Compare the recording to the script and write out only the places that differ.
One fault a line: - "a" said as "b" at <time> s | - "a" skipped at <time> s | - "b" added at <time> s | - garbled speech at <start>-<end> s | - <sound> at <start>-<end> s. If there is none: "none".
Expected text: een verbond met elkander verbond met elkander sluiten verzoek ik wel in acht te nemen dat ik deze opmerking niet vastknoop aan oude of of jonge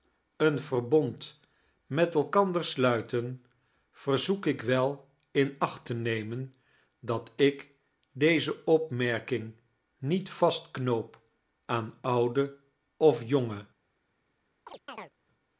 - "verbond met elkander" skipped at 2.6 s
- "of" skipped at 13.2 s
- chirp at 14.7-15.1 s